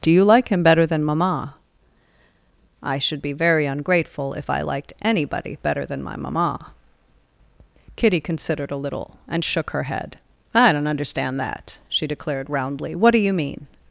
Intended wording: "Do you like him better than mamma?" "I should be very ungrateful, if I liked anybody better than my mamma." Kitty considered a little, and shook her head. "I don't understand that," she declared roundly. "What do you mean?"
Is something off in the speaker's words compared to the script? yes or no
no